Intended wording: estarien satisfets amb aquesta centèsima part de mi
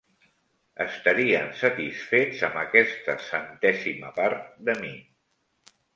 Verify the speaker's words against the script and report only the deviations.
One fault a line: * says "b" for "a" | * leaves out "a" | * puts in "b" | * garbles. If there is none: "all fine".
all fine